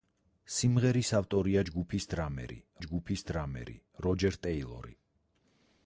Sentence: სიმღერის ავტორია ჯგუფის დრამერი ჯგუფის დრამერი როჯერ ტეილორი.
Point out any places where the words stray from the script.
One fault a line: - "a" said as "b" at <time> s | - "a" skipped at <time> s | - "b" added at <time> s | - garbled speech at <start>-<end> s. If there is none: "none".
none